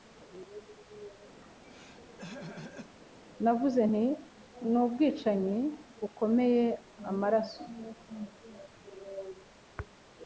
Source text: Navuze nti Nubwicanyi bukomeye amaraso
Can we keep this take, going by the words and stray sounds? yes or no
no